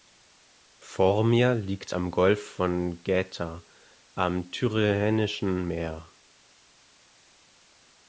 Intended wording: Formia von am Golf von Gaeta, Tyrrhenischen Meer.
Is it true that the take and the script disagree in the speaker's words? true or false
true